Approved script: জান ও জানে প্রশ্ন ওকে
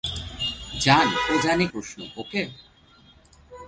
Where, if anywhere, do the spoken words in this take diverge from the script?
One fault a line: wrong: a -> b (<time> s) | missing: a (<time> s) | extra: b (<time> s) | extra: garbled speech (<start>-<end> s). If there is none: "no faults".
no faults